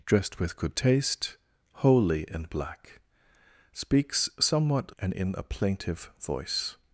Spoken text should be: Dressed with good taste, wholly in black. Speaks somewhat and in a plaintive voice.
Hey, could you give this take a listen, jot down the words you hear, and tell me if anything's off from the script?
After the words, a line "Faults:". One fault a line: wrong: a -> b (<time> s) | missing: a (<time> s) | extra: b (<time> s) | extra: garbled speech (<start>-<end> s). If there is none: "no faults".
Dressed with good taste, wholly in black. Speaks somewhat and in a plaintive voice.
Faults:
no faults